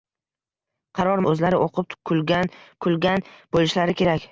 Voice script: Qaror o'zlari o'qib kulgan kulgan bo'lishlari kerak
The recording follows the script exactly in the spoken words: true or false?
true